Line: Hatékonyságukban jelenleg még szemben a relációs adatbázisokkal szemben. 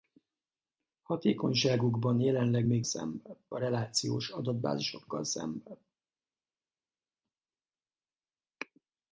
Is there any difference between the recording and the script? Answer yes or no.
no